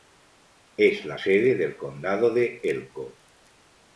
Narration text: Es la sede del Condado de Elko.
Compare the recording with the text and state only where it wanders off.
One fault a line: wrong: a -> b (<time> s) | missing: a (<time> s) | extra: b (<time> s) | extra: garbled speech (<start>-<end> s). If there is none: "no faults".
no faults